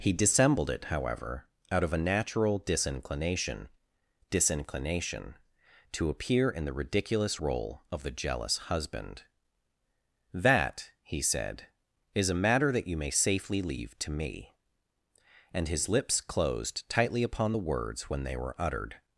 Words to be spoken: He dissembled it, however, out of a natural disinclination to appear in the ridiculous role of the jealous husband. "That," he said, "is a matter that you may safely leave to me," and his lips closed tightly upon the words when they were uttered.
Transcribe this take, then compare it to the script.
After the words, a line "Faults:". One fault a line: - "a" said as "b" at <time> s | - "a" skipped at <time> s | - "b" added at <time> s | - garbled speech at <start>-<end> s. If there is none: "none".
He dissembled it, however, out of a natural disinclination disinclination to appear in the ridiculous role of the jealous husband. "That," he said, "is a matter that you may safely leave to me," and his lips closed tightly upon the words when they were uttered.
Faults:
- "disinclination" added at 4.3 s